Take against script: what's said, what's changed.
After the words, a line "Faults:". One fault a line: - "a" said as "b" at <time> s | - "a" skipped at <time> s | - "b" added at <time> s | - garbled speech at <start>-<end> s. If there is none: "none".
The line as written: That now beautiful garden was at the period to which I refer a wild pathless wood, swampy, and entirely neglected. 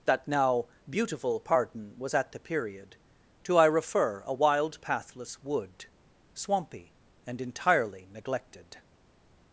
That now beautiful pardon was at the period to I refer a wild pathless wood, swampy, and entirely neglected.
Faults:
- "garden" said as "pardon" at 1.4 s
- "which" skipped at 3.6 s